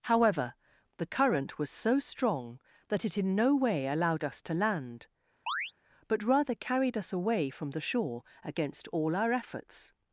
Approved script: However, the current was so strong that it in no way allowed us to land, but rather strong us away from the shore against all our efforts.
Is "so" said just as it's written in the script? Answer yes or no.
yes